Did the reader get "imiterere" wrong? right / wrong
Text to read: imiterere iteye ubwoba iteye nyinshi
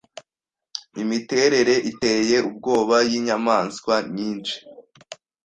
right